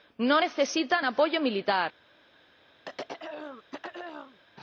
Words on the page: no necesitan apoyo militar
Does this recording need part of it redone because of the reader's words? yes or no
no